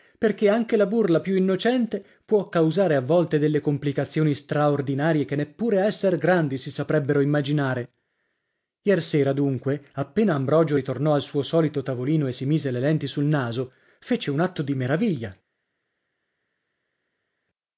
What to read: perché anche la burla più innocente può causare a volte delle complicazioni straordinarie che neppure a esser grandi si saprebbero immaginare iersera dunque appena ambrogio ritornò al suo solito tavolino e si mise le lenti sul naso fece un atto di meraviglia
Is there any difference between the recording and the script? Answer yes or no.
no